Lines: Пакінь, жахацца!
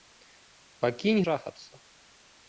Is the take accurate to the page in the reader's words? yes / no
yes